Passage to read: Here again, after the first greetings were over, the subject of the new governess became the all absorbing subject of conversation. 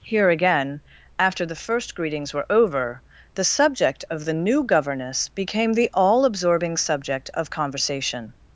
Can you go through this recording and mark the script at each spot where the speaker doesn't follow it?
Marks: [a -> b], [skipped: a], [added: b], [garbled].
Here again, after the first greetings were over, the subject of the new governess became the all absorbing subject of conversation.